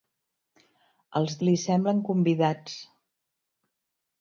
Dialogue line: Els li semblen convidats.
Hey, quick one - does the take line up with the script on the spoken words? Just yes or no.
yes